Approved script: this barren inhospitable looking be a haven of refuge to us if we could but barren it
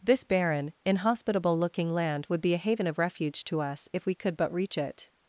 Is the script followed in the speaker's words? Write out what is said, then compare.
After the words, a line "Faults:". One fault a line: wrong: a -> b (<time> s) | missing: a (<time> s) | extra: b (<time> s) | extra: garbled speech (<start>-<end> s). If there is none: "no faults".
this barren inhospitable looking land would be a haven of refuge to us if we could but reach it
Faults:
extra: land would (1.9 s)
wrong: barren -> reach (4.5 s)